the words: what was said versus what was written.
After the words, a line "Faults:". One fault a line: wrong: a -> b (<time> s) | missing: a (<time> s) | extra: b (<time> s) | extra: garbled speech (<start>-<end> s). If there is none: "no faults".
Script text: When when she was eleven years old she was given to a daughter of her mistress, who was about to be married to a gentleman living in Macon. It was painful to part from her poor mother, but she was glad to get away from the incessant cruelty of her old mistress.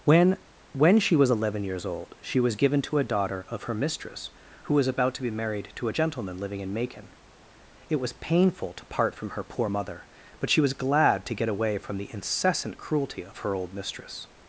When when she was eleven years old she was given to a daughter of her mistress, who was about to be married to a gentleman living in Macon. It was painful to part from her poor mother, but she was glad to get away from the incessant cruelty of her old mistress.
Faults:
no faults